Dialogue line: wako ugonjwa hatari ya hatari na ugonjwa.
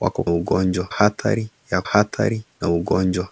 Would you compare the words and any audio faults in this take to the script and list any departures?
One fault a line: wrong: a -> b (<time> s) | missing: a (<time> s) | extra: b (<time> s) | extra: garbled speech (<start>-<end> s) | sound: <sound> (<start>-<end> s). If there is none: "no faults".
no faults